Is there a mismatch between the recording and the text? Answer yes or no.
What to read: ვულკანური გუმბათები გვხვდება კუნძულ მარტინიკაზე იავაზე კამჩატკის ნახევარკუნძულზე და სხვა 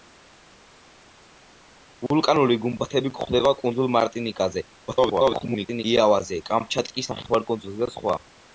yes